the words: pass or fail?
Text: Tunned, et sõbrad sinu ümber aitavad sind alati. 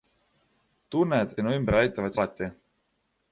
fail